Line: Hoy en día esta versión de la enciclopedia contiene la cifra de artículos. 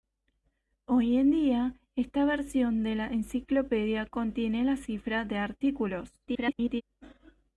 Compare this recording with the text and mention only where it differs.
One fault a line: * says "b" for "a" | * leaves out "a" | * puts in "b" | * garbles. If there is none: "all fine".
* garbles